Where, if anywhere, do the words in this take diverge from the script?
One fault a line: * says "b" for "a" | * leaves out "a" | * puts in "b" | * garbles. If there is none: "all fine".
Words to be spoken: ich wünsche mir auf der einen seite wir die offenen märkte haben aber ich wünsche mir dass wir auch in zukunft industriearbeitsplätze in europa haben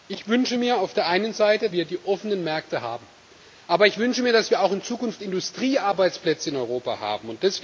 all fine